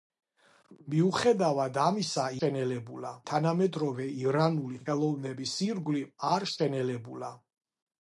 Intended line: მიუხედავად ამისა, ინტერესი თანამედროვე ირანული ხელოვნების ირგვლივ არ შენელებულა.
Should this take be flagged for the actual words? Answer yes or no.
yes